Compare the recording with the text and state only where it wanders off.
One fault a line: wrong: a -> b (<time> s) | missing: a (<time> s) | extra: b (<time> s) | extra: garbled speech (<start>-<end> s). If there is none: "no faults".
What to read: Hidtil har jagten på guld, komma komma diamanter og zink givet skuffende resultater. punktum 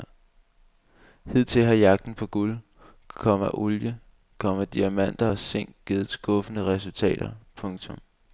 extra: olie (3.5 s)